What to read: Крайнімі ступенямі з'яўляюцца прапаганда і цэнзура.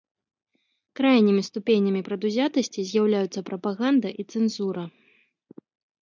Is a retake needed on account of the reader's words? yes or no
yes